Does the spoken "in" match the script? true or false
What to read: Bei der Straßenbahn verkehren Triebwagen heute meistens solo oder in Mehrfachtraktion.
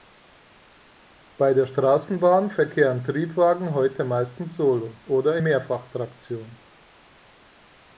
false